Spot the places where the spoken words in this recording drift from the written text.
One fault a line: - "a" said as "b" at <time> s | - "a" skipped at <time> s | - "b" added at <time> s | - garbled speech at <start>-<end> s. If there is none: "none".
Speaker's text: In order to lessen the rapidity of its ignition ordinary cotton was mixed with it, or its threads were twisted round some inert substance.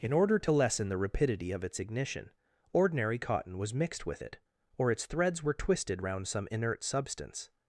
none